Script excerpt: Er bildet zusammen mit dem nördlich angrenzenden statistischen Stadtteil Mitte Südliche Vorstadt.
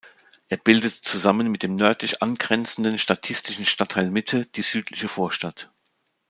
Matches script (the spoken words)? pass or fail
fail